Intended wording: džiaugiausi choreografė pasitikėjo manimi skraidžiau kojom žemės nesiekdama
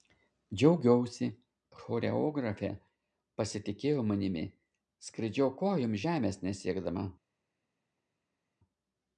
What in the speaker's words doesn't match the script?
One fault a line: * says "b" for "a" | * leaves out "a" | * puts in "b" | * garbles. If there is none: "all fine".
all fine